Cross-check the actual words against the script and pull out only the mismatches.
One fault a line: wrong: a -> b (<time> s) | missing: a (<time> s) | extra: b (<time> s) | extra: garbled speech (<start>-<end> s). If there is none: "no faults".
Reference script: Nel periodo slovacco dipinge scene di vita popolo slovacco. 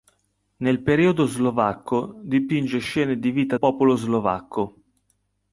no faults